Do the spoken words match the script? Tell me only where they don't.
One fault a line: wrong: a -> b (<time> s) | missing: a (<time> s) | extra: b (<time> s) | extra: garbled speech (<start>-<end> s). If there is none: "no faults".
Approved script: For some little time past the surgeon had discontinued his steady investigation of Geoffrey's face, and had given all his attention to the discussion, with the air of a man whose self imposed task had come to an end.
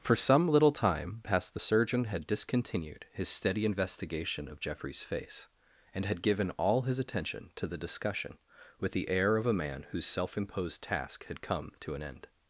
no faults